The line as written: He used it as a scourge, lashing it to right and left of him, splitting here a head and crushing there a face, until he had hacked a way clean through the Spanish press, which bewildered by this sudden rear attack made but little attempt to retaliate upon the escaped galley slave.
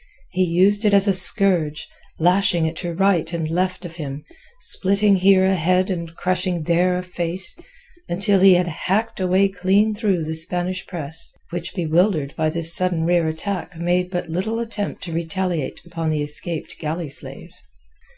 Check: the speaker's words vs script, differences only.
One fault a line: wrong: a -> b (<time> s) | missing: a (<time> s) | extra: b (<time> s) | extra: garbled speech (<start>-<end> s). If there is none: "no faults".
no faults